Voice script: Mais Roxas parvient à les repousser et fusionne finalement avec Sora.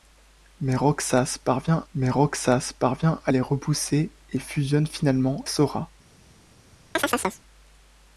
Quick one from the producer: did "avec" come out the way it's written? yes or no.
no